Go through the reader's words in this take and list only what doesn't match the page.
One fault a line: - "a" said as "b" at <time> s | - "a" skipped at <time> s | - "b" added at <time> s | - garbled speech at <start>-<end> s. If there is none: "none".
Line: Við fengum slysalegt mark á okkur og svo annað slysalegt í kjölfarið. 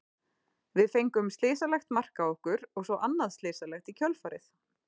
none